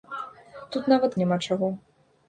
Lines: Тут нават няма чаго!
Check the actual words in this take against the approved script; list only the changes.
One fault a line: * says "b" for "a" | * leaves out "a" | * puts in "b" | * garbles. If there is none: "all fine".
all fine